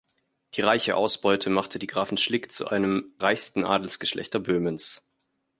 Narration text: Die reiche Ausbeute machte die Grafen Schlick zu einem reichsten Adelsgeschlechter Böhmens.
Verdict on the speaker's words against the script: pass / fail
pass